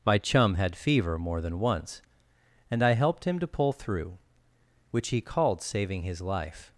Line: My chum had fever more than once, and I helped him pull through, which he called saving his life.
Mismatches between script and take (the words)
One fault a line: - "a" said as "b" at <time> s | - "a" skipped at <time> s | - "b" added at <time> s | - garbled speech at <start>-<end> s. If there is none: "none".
- "to" added at 3.4 s